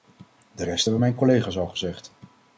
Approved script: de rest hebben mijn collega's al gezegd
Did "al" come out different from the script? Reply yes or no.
no